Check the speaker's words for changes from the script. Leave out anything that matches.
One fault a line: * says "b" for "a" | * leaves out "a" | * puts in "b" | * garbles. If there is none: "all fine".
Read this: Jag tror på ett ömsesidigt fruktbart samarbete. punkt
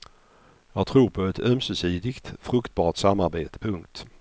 all fine